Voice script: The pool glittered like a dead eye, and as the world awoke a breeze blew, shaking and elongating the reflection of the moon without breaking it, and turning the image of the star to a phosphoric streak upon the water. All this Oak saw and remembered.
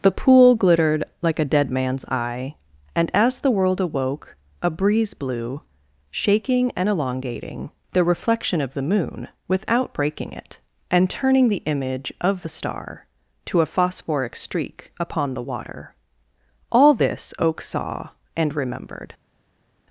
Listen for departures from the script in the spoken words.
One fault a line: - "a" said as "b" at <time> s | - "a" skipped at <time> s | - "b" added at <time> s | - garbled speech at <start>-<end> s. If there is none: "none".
- "man's" added at 1.7 s